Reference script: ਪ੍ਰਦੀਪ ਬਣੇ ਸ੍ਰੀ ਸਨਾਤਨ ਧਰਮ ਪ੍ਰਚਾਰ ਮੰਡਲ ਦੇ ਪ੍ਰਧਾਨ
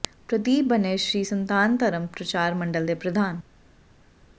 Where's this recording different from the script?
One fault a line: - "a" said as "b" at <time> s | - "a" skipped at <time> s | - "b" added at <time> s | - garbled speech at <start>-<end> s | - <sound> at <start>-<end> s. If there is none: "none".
none